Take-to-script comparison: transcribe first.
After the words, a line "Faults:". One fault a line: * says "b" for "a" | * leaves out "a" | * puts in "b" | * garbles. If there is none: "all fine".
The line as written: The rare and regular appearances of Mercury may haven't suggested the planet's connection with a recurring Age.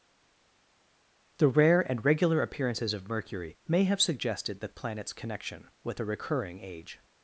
The rare and regular appearances of Mercury may have suggested the planet's connection with a recurring Age.
Faults:
* says "have" for "haven't"